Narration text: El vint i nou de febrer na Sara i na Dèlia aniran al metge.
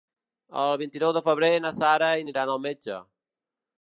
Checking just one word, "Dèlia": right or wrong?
wrong